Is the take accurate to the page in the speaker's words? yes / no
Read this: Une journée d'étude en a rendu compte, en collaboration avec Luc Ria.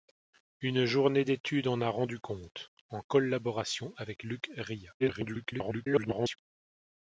no